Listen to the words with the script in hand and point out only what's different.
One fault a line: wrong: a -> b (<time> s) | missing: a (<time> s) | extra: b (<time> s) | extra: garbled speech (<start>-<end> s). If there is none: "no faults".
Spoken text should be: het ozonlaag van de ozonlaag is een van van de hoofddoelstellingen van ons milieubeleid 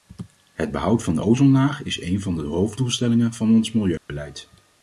wrong: ozonlaag -> behoud (0.7 s)
missing: van (2.3 s)